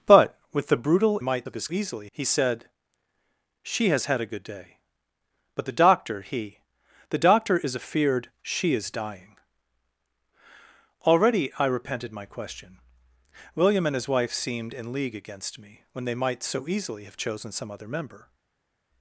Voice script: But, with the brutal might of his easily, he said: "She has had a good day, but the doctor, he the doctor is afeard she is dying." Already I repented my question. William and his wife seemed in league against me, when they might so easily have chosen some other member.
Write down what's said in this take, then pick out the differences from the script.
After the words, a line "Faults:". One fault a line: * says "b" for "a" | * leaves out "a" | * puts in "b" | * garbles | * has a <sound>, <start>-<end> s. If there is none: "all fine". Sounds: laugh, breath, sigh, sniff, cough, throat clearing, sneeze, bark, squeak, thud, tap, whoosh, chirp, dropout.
But, with the brutal might of his easily, he said: "She has had a good day, but the doctor, he the doctor is afeard she is dying." Already I repented my question. William and his wife seemed in league against me, when they might so easily have chosen some other member.
Faults:
all fine